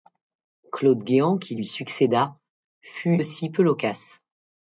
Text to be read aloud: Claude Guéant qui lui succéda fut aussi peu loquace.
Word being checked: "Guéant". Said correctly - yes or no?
yes